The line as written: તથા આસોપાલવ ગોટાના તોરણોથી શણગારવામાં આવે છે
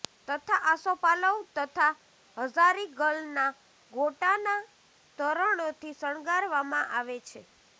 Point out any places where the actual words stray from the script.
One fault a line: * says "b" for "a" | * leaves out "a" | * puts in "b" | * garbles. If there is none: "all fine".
* puts in "તથા હઝારીગલના"